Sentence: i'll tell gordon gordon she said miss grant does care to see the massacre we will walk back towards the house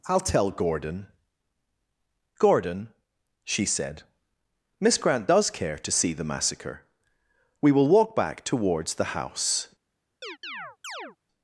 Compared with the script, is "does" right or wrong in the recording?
right